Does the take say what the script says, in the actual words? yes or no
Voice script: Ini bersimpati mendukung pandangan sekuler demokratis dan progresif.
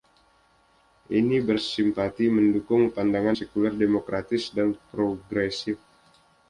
yes